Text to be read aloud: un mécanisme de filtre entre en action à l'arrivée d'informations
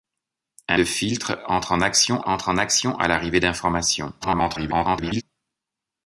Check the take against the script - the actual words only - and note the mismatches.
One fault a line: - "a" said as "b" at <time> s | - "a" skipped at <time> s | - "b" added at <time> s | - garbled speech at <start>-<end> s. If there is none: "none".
- "mécanisme" skipped at 0.8 s
- "entre en action" added at 2.3 s
- garbled speech at 4.2-5.2 s